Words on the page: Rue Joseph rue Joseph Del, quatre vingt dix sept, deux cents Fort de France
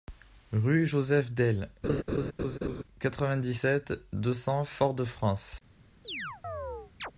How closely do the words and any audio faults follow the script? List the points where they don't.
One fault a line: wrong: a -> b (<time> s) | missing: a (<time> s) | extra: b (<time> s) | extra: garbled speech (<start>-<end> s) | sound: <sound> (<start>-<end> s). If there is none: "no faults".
missing: rue Joseph (1.3 s)
sound: laugh (1.8-2.8 s)
sound: chirp (6.0-7.1 s)